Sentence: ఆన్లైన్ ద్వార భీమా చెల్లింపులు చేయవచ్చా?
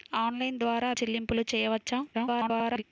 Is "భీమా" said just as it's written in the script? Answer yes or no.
no